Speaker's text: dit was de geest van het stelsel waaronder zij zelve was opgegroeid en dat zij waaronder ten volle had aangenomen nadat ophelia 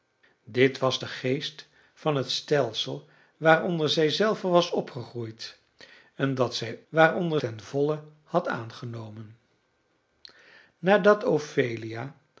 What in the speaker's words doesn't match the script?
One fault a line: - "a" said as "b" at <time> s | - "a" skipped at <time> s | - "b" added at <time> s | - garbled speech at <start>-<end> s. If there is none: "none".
none